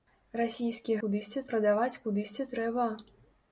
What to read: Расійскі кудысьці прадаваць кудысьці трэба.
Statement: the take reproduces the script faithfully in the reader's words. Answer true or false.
true